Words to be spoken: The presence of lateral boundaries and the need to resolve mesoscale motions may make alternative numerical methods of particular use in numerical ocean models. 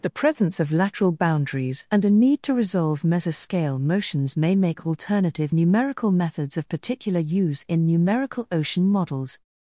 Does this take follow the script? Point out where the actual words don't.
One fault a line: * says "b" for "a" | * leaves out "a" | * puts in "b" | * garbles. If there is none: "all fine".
* says "a" for "the"